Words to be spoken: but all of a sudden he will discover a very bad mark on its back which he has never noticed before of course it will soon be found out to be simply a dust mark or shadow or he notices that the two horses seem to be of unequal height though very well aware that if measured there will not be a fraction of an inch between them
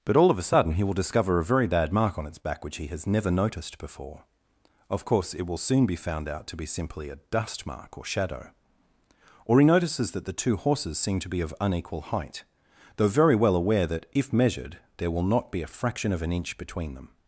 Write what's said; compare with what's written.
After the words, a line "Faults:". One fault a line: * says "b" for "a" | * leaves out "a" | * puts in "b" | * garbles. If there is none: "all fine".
but all of a sudden he will discover a very bad mark on its back which he has never noticed before of course it will soon be found out to be simply a dust mark or shadow or he notices that the two horses seem to be of unequal height though very well aware that if measured there will not be a fraction of an inch between them
Faults:
all fine